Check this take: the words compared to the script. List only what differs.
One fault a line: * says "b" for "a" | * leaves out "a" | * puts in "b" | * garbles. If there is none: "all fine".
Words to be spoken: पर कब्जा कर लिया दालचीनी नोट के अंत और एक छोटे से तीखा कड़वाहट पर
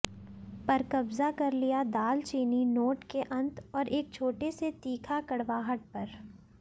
all fine